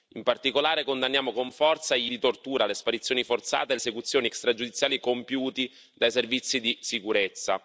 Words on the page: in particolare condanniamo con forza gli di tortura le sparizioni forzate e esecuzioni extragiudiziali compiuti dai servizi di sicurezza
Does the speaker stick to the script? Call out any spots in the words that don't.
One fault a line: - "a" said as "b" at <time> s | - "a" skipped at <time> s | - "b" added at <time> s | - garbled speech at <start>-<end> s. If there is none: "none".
none